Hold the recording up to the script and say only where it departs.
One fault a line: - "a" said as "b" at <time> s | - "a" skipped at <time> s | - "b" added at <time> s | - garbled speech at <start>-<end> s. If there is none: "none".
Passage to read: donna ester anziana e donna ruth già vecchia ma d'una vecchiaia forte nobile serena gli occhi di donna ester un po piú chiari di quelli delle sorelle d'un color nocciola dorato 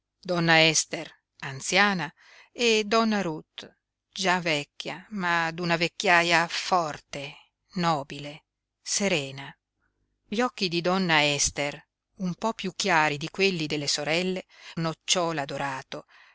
- "d'un color" skipped at 14.5 s